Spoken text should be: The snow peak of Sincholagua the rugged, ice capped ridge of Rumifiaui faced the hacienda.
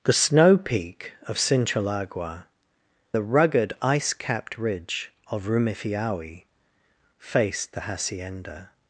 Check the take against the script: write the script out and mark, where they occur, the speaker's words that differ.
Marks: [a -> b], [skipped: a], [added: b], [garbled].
The snow peak of Sincholagua the rugged, ice capped ridge of Rumifiaui faced the hacienda.